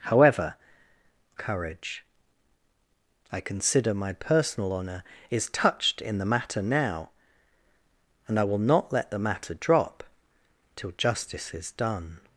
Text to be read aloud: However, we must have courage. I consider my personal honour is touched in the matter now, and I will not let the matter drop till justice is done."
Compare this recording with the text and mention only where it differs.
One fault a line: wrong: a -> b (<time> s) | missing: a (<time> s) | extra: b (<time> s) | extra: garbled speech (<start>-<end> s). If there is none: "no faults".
missing: we must have (0.6 s)